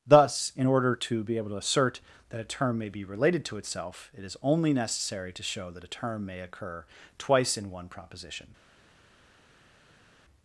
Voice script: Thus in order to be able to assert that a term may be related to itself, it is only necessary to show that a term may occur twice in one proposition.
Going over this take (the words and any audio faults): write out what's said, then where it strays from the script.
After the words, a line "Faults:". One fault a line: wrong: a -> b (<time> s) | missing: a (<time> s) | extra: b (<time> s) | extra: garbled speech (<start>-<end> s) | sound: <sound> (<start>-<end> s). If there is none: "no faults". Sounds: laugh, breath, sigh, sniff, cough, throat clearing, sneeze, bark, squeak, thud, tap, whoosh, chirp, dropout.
Thus in order to be able to assert that a term may be related to itself, it is only necessary to show that a term may occur twice in one proposition.
Faults:
no faults